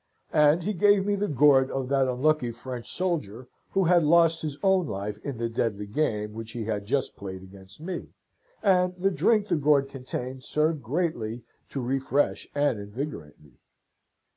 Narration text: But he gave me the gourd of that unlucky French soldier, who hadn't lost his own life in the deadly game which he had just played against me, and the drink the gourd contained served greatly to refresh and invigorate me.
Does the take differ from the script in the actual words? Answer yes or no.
yes